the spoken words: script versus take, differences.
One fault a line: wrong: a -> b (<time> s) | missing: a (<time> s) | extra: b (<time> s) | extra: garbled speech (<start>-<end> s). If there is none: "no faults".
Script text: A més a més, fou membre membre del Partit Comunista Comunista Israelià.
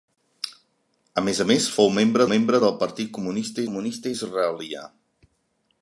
no faults